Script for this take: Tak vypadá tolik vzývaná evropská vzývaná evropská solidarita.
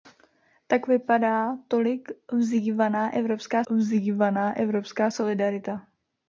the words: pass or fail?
pass